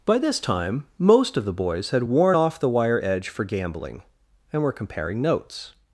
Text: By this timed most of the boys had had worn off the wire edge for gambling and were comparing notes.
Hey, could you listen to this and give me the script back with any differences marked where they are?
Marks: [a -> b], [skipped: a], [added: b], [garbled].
By this [timed -> time] most of the boys had [skipped: had] worn off the wire edge for gambling and were comparing notes.